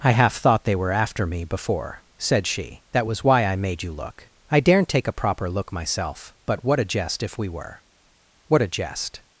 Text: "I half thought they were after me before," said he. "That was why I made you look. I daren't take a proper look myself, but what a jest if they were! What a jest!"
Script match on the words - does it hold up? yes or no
no